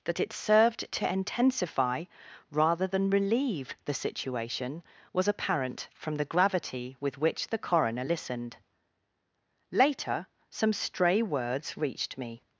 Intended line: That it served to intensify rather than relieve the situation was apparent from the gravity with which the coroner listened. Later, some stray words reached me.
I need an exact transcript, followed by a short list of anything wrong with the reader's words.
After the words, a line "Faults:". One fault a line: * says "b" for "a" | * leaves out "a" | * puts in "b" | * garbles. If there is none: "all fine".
That it served to intensify rather than relieve the situation was apparent from the gravity with which the coroner listened. Later, some stray words reached me.
Faults:
all fine